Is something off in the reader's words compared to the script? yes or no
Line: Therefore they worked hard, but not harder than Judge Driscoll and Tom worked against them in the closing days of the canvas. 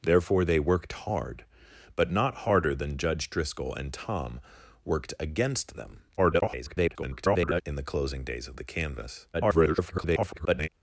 yes